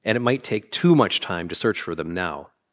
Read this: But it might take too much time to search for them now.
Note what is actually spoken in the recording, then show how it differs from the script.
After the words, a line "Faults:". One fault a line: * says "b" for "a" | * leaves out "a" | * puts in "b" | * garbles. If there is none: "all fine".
And it might take too much time to search for them now.
Faults:
* says "And" for "But"